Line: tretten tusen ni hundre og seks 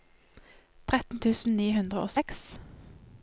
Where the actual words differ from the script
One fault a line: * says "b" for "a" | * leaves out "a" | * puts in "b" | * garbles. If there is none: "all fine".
all fine